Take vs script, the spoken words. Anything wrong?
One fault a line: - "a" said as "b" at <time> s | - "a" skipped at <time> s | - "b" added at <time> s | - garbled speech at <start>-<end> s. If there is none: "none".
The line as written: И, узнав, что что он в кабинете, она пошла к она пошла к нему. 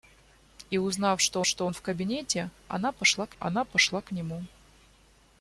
none